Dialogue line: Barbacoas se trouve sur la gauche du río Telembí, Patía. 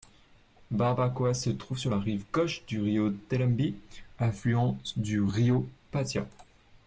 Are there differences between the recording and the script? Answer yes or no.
yes